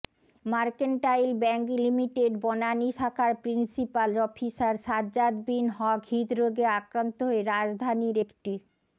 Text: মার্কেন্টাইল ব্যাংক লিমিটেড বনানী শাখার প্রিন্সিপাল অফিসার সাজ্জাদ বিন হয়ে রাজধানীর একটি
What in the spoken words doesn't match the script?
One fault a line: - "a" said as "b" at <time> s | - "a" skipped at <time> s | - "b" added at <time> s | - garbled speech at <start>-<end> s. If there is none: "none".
- "হক হৃদরোগে আক্রান্ত" added at 5.8 s